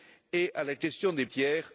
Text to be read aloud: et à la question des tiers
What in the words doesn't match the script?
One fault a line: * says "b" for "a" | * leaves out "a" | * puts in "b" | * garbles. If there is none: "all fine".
all fine